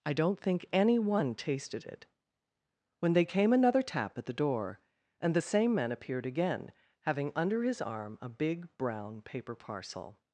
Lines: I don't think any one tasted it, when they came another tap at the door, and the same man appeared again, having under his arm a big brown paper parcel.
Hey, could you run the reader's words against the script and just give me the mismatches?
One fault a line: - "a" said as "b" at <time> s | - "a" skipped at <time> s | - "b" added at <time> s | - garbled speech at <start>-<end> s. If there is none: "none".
none